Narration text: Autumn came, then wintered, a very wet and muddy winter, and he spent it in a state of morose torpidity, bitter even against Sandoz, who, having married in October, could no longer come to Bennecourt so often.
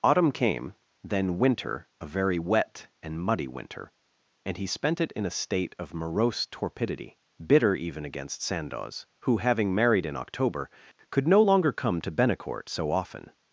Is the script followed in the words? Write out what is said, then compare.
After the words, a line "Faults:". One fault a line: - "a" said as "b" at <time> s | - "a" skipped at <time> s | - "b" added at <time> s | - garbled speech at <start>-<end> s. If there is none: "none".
Autumn came, then winter, a very wet and muddy winter, and he spent it in a state of morose torpidity, bitter even against Sandoz, who, having married in October, could no longer come to Bennecourt so often.
Faults:
- "wintered" said as "winter" at 1.4 s